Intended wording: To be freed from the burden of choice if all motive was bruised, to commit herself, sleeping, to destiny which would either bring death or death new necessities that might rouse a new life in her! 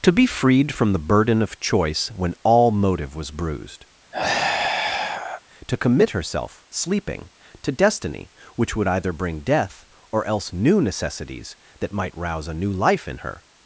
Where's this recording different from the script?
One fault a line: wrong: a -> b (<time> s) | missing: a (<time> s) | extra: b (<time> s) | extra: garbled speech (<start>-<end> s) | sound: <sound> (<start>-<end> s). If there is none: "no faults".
wrong: if -> when (2.1 s)
sound: sigh (4.1-5.4 s)
wrong: death -> else (10.3 s)